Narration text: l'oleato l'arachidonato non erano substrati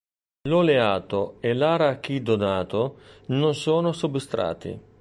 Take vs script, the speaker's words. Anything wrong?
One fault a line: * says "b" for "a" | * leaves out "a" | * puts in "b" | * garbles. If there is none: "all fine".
* puts in "e"
* says "sono" for "erano"